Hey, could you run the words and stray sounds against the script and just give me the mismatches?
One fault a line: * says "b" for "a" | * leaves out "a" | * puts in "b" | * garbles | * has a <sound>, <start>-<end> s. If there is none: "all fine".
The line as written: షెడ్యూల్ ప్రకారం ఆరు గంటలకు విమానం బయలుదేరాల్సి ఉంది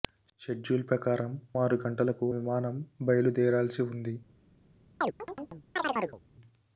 * has a chirp, 5.0-6.2 s